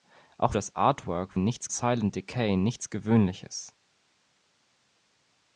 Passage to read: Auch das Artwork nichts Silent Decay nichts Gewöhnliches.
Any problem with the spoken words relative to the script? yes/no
no